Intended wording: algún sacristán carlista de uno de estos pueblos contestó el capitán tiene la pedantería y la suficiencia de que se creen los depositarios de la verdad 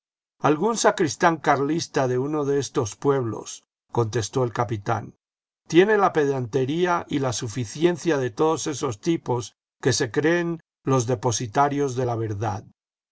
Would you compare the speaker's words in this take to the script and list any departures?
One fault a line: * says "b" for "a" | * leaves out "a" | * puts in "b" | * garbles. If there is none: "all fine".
* puts in "todos esos tipos"